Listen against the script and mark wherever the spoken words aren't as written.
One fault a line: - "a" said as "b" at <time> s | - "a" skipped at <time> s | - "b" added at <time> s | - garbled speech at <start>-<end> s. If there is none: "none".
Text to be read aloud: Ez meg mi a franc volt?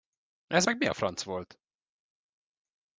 none